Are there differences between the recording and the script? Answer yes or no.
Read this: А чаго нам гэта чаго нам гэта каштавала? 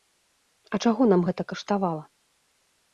yes